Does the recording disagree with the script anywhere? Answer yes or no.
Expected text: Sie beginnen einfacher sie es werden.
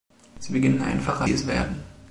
no